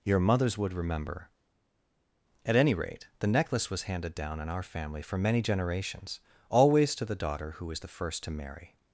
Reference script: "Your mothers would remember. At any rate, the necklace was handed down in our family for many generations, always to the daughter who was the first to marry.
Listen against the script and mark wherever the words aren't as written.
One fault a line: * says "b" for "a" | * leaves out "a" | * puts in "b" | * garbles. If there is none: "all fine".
all fine